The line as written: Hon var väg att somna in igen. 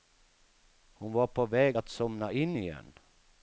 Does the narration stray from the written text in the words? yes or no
yes